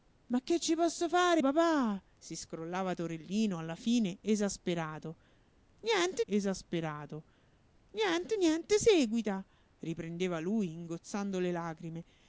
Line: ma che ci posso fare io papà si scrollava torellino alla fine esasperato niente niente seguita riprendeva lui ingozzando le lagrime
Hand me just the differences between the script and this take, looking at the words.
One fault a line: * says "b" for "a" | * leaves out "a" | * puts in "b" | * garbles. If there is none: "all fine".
* leaves out "io"
* puts in "esasperato niente"